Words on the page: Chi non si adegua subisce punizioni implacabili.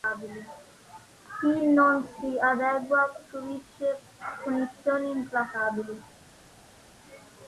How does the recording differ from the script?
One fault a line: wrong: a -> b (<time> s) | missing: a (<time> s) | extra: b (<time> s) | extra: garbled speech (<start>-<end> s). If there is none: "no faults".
no faults